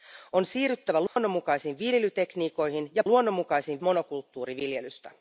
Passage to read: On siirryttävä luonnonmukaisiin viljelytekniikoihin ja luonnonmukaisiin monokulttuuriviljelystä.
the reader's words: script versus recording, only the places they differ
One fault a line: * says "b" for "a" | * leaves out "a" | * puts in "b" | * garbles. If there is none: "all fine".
all fine